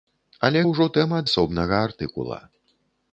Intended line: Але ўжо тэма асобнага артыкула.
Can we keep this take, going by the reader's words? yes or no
yes